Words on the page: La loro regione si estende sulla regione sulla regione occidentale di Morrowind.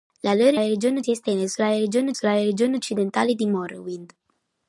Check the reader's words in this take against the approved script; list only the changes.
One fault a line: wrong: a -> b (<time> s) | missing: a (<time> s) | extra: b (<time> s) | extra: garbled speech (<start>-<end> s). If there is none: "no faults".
no faults